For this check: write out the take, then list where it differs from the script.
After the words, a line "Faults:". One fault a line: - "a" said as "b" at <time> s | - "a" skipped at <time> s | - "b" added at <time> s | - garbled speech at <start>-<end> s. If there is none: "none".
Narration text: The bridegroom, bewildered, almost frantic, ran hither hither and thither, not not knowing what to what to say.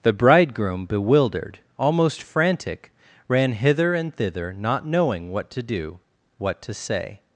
The bridegroom, bewildered, almost frantic, ran hither and thither, not knowing what to do, what to say.
Faults:
- "hither" skipped at 3.9 s
- "not" skipped at 4.9 s
- "do" added at 5.6 s